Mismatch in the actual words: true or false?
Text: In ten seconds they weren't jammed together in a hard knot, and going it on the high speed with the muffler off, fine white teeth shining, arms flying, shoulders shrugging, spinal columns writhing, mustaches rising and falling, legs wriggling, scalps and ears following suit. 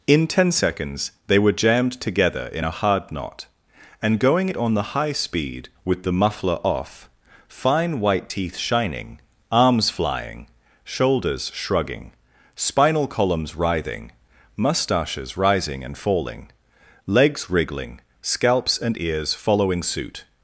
true